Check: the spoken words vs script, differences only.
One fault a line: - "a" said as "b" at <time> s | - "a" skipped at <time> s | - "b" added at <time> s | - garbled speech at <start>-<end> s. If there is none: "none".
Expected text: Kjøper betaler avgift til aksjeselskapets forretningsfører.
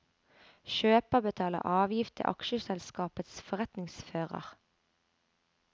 none